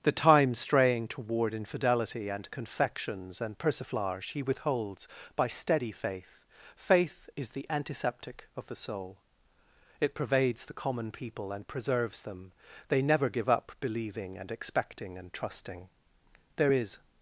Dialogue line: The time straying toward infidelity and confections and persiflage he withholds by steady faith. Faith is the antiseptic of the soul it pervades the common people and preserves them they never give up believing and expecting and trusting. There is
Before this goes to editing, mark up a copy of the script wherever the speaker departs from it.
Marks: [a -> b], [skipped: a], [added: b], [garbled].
The time straying toward infidelity and confections and persiflage he withholds by steady faith. Faith is the antiseptic of the soul it pervades the common people and preserves them they never give up believing and expecting and trusting. There is